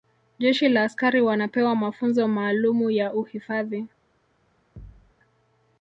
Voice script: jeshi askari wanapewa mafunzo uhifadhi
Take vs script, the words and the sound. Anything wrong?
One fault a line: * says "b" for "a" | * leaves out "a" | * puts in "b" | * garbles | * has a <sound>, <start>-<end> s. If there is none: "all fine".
* puts in "la"
* puts in "maalumu ya"
* has a thud, 4.8-5.1 s